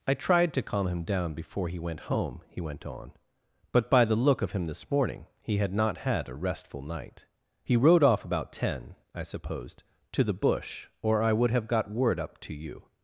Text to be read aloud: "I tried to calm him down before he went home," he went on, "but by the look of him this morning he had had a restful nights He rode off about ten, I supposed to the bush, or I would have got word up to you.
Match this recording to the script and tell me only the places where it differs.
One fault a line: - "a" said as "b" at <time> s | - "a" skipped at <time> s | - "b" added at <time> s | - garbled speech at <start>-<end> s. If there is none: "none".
- "not" added at 5.7 s
- "nights" said as "night" at 6.8 s